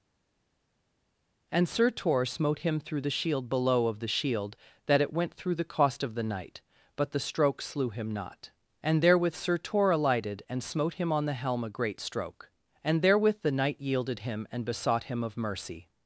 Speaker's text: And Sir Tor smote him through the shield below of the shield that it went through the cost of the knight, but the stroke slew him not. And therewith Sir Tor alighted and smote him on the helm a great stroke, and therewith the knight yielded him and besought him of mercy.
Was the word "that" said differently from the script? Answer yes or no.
no